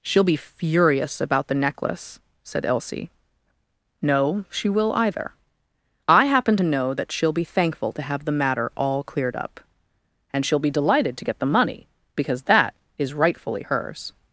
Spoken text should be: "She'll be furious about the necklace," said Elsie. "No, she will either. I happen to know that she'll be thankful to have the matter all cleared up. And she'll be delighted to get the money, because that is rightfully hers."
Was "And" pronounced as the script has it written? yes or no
yes